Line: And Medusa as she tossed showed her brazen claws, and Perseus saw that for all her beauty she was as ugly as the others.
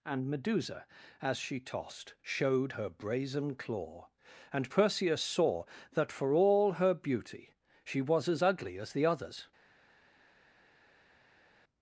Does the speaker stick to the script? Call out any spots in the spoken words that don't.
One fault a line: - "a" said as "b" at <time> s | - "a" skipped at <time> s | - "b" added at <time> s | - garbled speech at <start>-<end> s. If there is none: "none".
- "claws" said as "claw" at 3.6 s